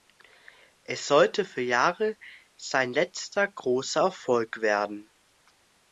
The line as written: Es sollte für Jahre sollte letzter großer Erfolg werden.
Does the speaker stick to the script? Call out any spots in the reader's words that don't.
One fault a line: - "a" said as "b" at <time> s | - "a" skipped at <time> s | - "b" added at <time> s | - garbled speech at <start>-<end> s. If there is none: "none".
- "sollte" said as "sein" at 2.5 s